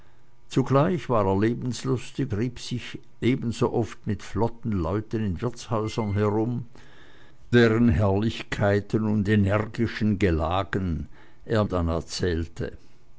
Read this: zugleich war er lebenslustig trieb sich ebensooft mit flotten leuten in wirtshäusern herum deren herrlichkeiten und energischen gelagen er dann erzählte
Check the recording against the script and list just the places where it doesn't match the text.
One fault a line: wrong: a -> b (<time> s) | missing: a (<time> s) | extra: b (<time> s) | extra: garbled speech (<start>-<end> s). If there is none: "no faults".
no faults